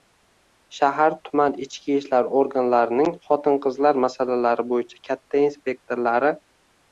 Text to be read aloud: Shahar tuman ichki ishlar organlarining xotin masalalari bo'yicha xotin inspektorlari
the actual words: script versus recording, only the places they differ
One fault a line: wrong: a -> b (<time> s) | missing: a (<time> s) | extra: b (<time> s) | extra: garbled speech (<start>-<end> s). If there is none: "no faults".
extra: qizlar (3.7 s)
wrong: xotin -> katta (5.1 s)